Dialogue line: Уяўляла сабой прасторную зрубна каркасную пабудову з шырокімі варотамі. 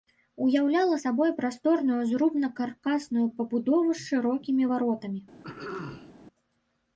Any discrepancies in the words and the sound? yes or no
yes